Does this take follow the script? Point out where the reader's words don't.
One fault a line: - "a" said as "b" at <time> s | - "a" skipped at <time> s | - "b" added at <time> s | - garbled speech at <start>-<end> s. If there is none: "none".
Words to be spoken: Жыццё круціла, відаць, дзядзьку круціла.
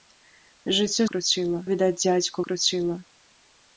none